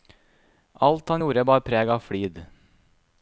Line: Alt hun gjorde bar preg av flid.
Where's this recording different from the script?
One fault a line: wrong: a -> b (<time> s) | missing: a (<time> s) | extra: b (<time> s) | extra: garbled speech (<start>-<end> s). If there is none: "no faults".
wrong: hun -> han (1.1 s)